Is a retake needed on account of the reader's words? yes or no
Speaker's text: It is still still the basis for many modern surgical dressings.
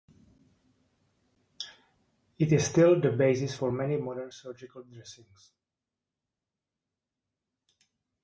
yes